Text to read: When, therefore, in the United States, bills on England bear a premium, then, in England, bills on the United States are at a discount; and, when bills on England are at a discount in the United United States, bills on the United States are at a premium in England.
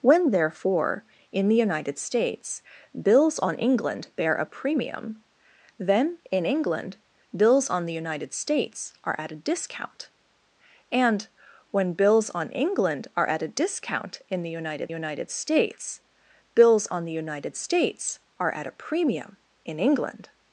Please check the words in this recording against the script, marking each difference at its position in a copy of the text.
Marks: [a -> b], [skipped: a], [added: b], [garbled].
When, therefore, in the United States, bills on England bear a premium, then, in England, bills on the United States are at a discount; and, when bills on England are at a discount in the United United States, bills on the United States are at a premium in England.